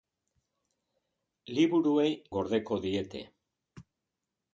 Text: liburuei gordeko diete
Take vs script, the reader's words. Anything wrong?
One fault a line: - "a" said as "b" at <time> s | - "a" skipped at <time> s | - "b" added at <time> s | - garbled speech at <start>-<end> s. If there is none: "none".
none